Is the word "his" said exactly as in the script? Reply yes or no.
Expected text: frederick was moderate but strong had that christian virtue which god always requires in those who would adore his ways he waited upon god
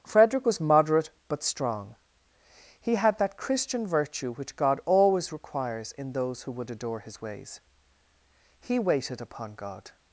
yes